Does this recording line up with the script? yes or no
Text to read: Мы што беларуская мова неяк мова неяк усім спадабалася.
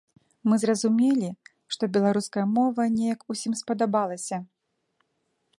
no